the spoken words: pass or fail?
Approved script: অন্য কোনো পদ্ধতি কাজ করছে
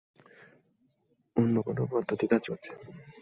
pass